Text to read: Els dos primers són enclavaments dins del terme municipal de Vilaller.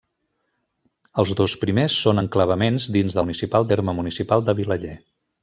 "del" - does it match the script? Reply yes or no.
no